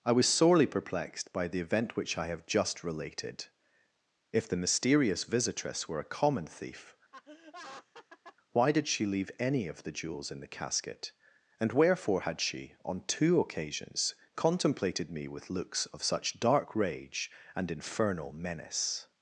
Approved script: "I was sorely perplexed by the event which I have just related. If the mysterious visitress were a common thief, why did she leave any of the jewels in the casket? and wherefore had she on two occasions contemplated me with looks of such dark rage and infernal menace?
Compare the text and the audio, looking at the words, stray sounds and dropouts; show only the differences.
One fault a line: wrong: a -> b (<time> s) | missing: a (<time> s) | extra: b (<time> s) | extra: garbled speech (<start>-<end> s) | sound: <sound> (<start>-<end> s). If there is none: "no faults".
sound: laugh (7.1-8.4 s)